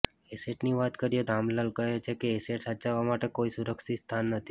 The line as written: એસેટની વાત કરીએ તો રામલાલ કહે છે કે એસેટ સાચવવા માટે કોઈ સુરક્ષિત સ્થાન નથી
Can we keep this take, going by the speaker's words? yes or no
no